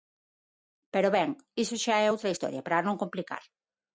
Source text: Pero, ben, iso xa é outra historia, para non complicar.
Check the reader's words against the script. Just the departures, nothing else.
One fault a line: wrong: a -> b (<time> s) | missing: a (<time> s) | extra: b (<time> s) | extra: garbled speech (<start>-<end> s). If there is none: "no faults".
no faults